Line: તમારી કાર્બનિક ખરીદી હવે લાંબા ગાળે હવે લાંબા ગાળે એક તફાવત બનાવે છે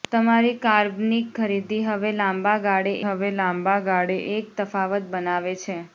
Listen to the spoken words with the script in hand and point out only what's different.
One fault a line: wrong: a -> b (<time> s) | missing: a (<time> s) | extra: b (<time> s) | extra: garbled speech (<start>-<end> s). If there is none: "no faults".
no faults